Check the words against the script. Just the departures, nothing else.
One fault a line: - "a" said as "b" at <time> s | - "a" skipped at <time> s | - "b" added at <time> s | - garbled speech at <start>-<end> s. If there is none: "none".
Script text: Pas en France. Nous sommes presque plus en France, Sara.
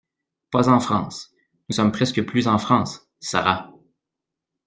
none